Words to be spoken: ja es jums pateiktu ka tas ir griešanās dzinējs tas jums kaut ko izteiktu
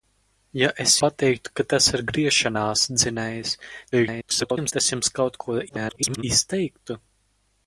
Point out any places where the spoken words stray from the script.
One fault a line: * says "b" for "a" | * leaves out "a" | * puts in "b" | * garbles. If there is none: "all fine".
* leaves out "jums"
* garbles
* garbles